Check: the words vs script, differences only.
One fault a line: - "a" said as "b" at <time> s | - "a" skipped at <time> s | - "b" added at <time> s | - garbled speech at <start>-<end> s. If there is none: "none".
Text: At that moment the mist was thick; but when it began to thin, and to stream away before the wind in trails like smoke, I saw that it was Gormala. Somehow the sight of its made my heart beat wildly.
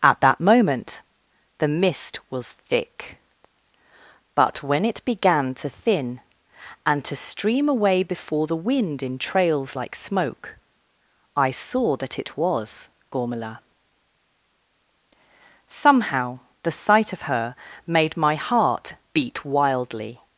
- "its" said as "her" at 17.2 s